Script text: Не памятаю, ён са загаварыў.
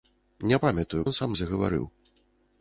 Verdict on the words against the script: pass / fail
pass